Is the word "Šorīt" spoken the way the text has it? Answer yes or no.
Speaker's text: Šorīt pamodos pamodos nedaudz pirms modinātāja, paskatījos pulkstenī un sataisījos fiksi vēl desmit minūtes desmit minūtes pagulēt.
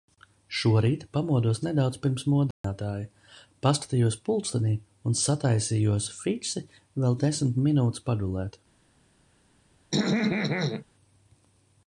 yes